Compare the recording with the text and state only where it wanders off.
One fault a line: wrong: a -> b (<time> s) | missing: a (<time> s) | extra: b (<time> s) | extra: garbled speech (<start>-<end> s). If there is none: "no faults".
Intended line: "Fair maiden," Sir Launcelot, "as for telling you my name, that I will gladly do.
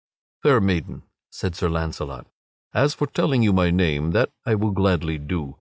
extra: said (1.3 s)